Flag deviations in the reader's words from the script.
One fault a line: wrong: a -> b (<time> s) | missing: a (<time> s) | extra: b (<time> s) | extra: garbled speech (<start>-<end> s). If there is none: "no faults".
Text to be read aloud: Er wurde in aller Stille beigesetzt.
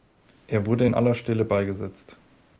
no faults